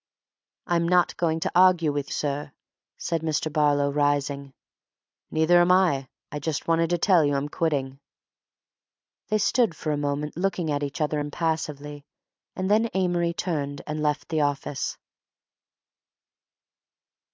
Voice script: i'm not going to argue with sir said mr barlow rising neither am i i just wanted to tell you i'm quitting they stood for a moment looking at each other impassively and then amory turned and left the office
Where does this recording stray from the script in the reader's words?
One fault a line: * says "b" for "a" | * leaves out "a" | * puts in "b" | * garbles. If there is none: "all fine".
all fine